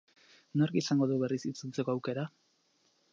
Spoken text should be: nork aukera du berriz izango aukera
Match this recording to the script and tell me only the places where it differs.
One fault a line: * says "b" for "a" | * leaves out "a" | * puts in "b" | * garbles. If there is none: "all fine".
* says "izango" for "aukera"
* says "itzultzeko" for "izango"